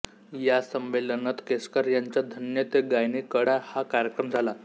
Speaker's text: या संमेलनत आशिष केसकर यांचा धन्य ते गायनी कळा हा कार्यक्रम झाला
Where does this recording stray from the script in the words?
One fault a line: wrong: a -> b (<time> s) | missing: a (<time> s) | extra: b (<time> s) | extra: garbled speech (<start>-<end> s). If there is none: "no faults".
missing: आशिष (1.4 s)